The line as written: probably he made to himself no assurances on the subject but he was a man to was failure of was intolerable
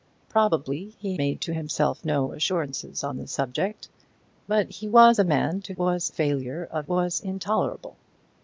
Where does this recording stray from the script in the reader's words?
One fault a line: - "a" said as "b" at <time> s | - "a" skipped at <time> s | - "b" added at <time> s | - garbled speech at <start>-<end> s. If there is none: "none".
none